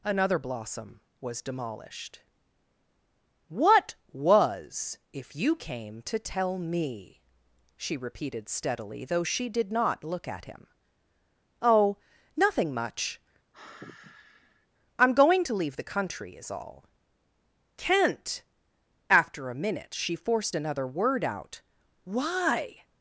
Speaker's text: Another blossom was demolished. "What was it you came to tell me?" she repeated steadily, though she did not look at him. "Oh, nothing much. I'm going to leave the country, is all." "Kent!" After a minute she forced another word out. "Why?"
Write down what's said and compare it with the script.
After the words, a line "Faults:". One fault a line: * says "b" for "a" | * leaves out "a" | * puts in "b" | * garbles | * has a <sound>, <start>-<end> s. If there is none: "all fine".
Another blossom was demolished. "What was if you came to tell me?" she repeated steadily, though she did not look at him. "Oh, nothing much. I'm going to leave the country, is all." "Kent!" After a minute she forced another word out. "Why?"
Faults:
* says "if" for "it"
* has a sigh, 13.5-14.7 s